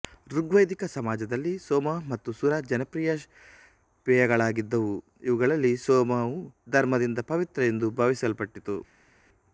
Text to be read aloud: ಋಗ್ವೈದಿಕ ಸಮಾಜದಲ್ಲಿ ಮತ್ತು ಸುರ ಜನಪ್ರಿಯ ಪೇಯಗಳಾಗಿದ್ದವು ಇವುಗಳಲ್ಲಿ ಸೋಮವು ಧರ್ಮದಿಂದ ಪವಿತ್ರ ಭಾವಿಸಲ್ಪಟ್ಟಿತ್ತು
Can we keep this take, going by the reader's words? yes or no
no